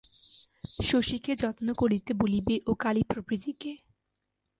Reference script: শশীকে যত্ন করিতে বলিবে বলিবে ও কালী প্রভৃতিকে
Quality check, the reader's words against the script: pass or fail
fail